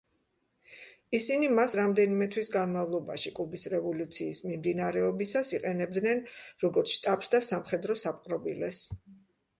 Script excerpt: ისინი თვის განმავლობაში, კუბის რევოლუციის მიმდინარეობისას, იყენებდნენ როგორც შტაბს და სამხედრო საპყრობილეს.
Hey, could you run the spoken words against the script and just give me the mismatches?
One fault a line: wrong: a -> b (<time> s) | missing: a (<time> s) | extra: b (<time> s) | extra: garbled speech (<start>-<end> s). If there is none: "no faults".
extra: მას რამდენიმე (1.6 s)